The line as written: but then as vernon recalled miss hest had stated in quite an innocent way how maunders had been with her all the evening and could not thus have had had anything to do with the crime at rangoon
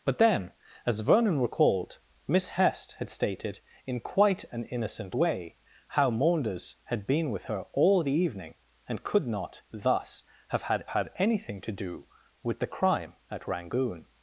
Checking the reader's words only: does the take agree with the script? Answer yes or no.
yes